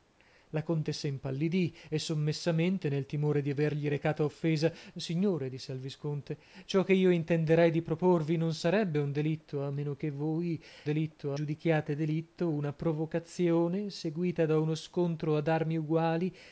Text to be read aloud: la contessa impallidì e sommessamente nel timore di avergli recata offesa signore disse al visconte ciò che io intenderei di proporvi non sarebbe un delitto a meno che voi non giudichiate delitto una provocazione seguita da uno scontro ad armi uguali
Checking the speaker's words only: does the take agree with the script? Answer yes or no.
no